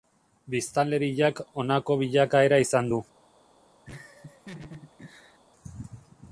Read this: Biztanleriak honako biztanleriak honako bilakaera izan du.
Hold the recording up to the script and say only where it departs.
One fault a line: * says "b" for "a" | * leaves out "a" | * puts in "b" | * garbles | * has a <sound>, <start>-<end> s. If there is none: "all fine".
* leaves out "biztanleriak honako"
* has a laugh, 3.9-5.4 s